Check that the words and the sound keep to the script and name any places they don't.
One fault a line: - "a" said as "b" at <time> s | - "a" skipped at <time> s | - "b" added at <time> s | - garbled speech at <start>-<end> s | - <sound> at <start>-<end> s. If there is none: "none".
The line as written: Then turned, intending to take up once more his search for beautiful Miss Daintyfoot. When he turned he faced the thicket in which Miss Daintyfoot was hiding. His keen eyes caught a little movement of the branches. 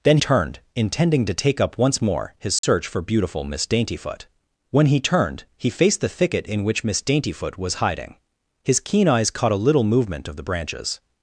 - dropout at 2.6-2.6 s